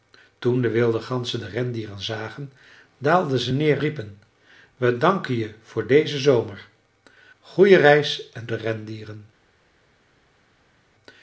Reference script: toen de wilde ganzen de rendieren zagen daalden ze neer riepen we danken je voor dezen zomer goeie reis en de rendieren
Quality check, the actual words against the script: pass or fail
pass